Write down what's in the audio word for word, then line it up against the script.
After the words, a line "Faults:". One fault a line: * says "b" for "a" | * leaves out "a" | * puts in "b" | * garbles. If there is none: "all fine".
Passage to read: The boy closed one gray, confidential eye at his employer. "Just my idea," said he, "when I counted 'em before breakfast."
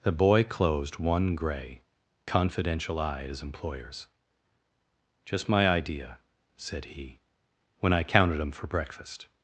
The boy closed one gray, confidential eye at his employers. "Just my idea," said he, "when I counted 'em for breakfast."
Faults:
* says "employers" for "employer"
* says "for" for "before"